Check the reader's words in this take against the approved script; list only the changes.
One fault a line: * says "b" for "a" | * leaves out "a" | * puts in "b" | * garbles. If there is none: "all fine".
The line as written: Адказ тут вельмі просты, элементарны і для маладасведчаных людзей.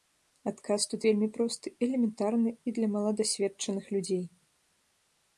all fine